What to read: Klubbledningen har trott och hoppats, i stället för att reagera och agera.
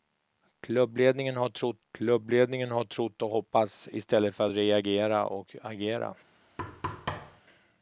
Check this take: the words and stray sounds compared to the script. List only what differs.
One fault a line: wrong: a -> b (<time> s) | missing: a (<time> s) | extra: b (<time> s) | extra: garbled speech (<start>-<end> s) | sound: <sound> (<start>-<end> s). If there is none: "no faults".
extra: klubbledningen har trott (1.9 s)
sound: thud (6.6-7.4 s)